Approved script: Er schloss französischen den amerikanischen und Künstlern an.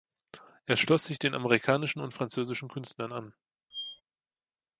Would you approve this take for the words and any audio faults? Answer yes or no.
no